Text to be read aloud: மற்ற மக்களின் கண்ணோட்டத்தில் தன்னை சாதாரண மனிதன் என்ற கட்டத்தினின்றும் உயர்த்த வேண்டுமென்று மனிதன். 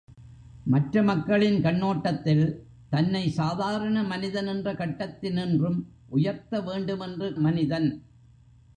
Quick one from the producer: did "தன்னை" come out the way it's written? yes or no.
yes